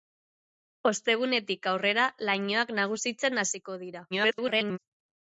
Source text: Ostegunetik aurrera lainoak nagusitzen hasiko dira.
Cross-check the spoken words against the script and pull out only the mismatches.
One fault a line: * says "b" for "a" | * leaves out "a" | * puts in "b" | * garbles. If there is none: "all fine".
* garbles